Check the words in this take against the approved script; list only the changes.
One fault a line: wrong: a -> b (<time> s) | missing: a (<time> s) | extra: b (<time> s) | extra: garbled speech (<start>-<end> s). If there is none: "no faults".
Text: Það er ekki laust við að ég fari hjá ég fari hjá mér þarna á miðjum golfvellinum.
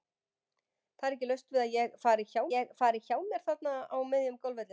no faults